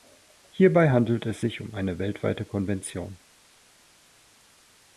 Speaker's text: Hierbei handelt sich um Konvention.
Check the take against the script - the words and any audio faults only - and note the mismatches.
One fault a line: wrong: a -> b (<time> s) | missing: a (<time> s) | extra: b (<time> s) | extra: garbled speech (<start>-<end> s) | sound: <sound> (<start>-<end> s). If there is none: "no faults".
extra: es (1.3 s)
extra: eine weltweite (1.7 s)